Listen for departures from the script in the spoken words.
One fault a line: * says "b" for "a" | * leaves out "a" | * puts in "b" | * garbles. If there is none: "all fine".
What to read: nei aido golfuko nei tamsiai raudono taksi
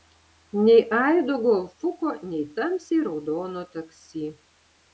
all fine